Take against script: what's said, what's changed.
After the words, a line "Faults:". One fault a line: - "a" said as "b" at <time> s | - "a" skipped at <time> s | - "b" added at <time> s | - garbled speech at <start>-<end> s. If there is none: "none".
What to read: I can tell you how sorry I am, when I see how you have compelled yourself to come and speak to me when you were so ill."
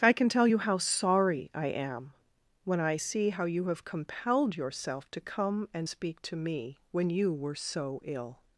I can tell you how sorry I am, when I see how you have compelled yourself to come and speak to me when you were so ill."
Faults:
none